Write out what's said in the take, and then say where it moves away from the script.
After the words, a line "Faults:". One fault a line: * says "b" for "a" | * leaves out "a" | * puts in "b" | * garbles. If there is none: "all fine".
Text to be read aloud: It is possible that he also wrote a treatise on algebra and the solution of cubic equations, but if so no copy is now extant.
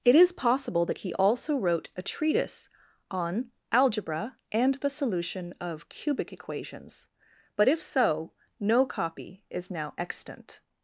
It is possible that he also wrote a treatise on algebra and the solution of cubic equations, but if so no copy is now extant.
Faults:
all fine